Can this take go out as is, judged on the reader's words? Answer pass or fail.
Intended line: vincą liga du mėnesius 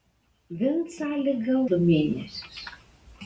pass